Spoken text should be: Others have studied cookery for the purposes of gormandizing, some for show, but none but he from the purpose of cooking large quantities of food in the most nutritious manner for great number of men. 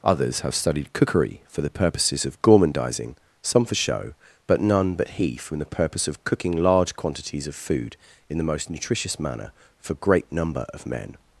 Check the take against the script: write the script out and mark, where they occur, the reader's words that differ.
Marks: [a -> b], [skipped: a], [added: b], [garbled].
Others have studied cookery for the purposes of gormandizing, some for show, but none but he from the purpose of cooking large quantities of food in the most nutritious manner for great number of men.